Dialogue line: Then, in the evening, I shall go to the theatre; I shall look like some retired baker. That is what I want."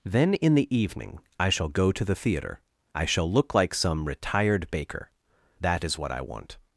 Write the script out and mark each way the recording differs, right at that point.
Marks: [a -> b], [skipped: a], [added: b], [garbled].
Then, in the evening, I shall go to the theatre; I shall look like some retired baker. That is what I want."